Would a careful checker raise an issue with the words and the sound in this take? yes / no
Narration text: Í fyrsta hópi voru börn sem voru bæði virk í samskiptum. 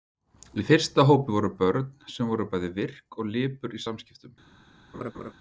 yes